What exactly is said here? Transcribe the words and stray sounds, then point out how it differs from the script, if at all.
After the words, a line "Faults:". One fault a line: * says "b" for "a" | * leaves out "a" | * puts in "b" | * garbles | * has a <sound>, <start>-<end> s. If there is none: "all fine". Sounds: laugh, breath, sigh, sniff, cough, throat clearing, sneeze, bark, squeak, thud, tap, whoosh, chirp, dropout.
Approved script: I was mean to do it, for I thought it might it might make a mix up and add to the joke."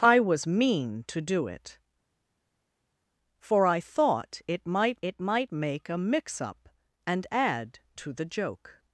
I was mean to do it, for I thought it might it might make a mix up and add to the joke."
Faults:
all fine